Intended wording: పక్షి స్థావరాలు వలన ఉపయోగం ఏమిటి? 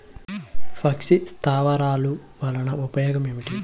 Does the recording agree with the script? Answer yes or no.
yes